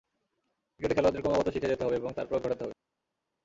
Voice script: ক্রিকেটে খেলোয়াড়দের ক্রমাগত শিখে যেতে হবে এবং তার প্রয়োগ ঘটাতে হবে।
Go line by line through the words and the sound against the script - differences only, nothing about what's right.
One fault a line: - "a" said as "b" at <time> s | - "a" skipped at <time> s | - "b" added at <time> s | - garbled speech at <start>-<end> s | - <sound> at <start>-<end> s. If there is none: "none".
none